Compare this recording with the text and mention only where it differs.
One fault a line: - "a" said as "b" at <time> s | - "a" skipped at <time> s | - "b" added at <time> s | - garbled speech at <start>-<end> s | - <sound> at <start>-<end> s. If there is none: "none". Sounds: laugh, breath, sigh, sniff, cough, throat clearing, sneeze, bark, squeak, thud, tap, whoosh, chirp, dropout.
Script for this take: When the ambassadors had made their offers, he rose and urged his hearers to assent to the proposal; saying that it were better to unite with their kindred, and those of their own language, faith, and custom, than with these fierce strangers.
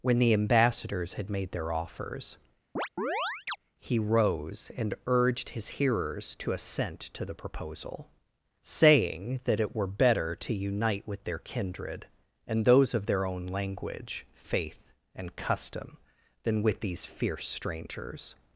- chirp at 2.8-3.6 s